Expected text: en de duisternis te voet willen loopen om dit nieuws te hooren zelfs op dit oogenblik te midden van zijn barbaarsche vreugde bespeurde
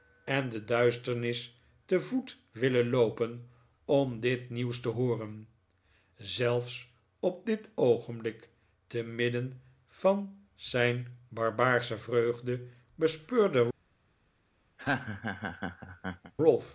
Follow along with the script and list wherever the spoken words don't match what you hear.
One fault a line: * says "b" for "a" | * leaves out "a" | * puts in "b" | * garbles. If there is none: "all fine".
all fine